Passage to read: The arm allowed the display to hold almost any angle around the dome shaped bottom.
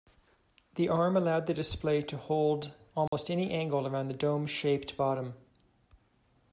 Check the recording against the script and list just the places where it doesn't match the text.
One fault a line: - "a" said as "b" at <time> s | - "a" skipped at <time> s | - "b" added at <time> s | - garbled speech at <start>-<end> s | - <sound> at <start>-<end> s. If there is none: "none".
- dropout at 3.1-3.1 s